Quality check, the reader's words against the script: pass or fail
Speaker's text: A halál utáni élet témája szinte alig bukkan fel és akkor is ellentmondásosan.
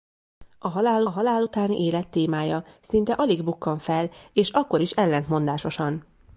fail